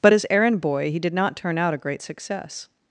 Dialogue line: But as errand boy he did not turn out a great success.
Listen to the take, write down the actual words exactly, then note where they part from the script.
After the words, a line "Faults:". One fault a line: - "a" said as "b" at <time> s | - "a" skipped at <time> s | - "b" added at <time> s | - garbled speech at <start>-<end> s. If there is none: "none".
But as errand boy he did not turn out a great success.
Faults:
none